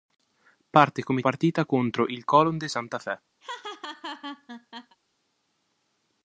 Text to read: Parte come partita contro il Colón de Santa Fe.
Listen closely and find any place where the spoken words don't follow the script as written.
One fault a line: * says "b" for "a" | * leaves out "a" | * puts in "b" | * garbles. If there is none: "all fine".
all fine